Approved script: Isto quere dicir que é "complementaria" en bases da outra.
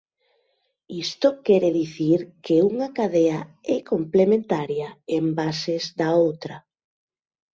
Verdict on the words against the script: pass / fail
fail